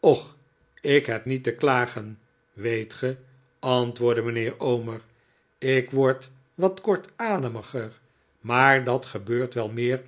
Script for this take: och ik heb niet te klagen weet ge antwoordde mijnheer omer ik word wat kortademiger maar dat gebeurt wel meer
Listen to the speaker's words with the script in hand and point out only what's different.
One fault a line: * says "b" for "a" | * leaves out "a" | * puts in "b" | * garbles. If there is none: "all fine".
all fine